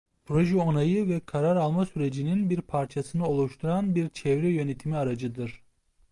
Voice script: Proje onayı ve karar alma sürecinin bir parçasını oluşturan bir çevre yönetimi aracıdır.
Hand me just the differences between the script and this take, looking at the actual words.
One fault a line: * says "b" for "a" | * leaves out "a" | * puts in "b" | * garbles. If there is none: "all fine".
all fine